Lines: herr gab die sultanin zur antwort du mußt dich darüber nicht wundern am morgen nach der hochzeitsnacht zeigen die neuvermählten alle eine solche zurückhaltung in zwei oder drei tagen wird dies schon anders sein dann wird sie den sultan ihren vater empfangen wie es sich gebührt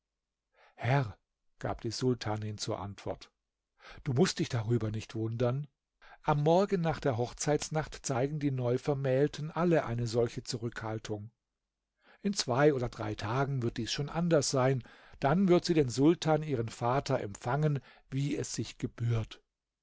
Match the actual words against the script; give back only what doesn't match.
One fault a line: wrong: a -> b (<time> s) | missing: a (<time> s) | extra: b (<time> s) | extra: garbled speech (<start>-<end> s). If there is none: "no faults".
no faults